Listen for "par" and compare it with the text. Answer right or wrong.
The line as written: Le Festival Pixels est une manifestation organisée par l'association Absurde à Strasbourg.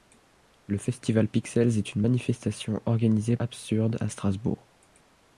wrong